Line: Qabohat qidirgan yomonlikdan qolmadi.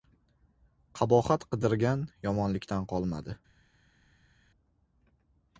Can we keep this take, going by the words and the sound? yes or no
yes